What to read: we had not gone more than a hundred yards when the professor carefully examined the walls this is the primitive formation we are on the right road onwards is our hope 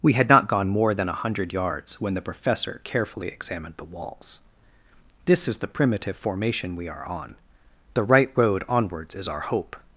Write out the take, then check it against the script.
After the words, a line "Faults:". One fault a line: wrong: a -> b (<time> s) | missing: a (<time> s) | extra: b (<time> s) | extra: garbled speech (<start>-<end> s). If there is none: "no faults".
we had not gone more than a hundred yards when the professor carefully examined the walls this is the primitive formation we are on the right road onwards is our hope
Faults:
no faults